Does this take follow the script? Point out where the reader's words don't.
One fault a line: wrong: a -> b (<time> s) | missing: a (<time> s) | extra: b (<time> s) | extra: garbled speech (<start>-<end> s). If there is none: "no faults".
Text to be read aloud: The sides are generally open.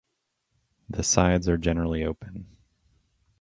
no faults